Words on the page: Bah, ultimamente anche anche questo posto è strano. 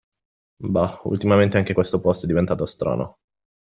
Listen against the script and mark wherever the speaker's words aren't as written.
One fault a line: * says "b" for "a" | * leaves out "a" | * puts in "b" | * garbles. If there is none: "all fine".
* leaves out "anche"
* puts in "diventato"